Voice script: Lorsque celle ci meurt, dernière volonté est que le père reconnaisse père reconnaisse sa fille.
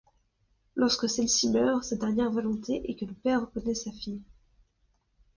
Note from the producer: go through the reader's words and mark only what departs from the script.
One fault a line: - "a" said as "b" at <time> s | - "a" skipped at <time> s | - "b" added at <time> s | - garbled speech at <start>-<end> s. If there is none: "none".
- "sa" added at 1.8 s
- "père reconnaisse" skipped at 3.8 s